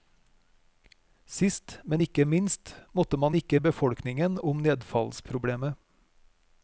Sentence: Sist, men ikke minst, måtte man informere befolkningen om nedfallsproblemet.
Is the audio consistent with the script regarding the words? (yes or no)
no